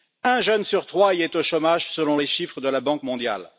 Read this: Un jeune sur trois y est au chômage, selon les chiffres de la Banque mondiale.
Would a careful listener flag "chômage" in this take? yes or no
no